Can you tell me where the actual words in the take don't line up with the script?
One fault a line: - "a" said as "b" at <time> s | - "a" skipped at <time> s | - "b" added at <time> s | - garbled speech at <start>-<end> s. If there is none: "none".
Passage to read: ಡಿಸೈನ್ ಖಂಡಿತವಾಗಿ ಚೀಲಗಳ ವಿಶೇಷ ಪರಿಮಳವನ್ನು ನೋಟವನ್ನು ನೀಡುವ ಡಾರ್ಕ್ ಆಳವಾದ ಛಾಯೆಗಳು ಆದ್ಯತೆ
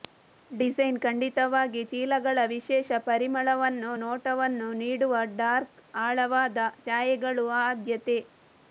none